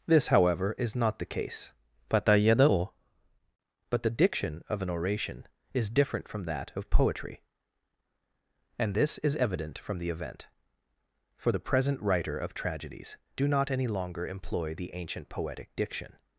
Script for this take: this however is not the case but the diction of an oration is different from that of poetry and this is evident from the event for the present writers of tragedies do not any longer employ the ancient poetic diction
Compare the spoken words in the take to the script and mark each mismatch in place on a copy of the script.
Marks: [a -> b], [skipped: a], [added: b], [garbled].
this however is not the case but the diction of an oration is different from that of poetry and this is evident from the event for the present [writers -> writer] of tragedies do not any longer employ the ancient poetic diction